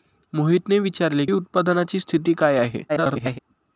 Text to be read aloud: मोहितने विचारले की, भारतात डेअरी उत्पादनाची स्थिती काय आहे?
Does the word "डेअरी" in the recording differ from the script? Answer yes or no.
yes